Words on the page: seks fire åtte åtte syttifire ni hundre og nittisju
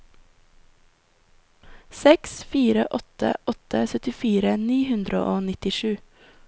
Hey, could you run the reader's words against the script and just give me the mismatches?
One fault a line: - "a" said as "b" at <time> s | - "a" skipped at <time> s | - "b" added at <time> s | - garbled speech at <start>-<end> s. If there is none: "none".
none